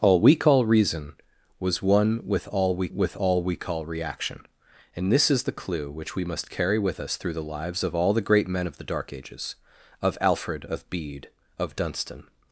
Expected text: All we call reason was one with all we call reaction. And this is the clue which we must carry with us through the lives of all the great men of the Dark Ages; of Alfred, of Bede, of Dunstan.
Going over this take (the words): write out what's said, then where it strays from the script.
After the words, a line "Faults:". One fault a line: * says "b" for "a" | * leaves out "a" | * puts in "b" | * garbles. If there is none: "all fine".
All we call reason was one with all we with all we call reaction. And this is the clue which we must carry with us through the lives of all the great men of the Dark Ages; of Alfred, of Bede, of Dunstan.
Faults:
* puts in "with all we"